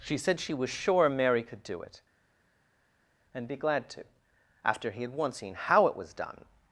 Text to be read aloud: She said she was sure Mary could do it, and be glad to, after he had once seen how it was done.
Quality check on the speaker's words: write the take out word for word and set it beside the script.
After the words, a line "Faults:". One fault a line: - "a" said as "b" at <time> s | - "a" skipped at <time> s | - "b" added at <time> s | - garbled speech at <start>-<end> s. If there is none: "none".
She said she was sure Mary could do it, and be glad to, after he had once seen how it was done.
Faults:
none